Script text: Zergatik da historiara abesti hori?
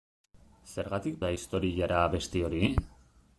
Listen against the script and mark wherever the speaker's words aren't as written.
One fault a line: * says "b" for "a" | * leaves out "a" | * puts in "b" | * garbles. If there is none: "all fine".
all fine